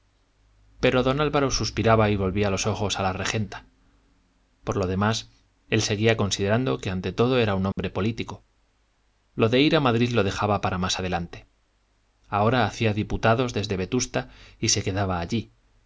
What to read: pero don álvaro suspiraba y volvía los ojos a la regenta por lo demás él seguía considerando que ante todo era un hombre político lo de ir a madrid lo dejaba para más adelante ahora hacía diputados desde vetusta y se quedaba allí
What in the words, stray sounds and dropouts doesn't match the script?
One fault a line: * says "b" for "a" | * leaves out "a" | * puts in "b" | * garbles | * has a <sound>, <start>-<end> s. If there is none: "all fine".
* has a dropout, 7.7-7.8 s